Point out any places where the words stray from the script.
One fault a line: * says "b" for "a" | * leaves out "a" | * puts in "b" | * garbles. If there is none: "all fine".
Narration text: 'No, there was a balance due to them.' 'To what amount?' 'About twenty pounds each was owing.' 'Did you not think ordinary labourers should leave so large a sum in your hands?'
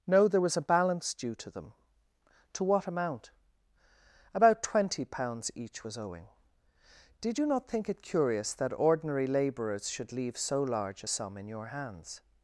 * puts in "it curious that"